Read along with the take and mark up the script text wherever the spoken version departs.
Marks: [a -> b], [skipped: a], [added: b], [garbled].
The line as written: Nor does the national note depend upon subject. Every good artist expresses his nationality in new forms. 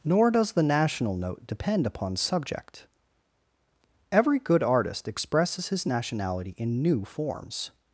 Nor does the national note depend upon subject. Every good artist expresses his nationality in new forms.